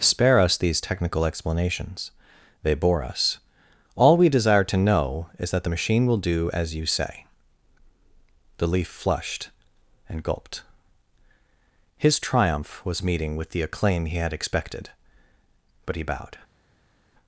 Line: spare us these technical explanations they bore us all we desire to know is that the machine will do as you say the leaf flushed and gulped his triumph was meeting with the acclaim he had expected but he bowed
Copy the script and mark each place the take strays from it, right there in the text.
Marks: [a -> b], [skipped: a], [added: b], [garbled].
spare us these technical explanations they bore us all we desire to know is that the machine will do as you say the leaf flushed and gulped his triumph was meeting with the acclaim he had expected but he bowed